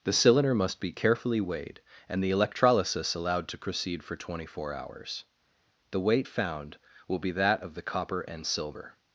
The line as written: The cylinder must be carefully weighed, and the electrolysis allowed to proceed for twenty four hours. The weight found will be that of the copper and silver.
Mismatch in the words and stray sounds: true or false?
false